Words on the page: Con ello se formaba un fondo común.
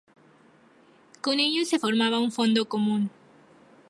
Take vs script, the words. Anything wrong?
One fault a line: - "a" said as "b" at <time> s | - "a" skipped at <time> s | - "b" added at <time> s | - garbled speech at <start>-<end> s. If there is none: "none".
none